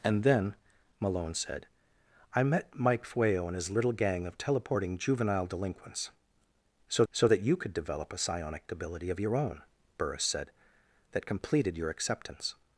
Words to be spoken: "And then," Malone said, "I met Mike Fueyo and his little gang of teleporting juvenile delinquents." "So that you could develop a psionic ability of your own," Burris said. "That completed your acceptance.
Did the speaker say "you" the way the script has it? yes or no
yes